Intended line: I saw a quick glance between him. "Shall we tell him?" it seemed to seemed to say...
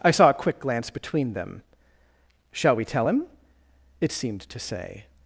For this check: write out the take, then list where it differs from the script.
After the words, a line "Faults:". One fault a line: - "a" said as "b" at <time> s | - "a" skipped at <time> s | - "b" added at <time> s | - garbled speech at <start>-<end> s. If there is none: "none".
I saw a quick glance between them. "Shall we tell him?" it seemed to say...
Faults:
- "him" said as "them" at 1.3 s
- "seemed to" skipped at 4.6 s